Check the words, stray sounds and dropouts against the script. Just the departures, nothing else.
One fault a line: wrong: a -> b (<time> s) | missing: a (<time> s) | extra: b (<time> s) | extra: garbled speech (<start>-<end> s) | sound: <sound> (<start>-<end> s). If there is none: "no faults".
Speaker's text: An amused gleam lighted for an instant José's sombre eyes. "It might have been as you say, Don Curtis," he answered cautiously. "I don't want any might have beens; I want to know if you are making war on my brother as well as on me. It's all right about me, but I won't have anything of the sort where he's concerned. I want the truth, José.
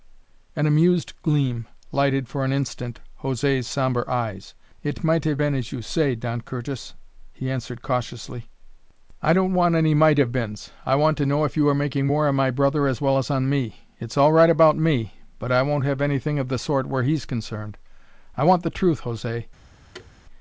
sound: thud (19.9-20.1 s)